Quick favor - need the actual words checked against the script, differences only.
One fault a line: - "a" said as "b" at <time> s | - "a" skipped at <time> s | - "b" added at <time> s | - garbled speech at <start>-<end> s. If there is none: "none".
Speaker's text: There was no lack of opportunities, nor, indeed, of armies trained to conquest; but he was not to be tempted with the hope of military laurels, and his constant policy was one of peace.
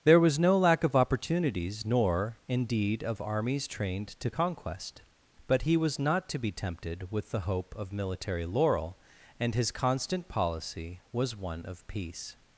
- "laurels" said as "laurel" at 8.4 s